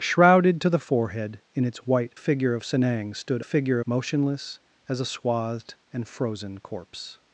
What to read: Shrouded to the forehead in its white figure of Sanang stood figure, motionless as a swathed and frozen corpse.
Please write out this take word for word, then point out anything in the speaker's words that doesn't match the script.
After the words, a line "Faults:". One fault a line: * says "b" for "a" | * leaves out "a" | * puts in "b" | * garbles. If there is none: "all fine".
Shrouded to the forehead in its white figure of Sanang stood figure, motionless as a swathed and frozen corpse.
Faults:
all fine